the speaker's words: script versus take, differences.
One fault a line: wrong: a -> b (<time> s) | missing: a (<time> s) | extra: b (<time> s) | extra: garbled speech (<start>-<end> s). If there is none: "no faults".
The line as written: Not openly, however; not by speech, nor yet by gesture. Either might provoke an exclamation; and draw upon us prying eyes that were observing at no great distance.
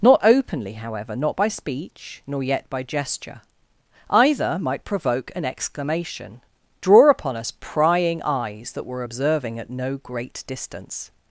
missing: and (6.4 s)